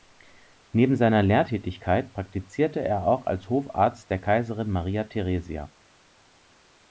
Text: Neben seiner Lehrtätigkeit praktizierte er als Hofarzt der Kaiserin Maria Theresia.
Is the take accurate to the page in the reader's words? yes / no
no